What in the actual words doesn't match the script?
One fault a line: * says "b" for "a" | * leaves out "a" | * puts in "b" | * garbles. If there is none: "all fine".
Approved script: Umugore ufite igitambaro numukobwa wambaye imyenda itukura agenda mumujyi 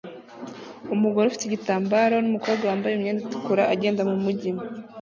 all fine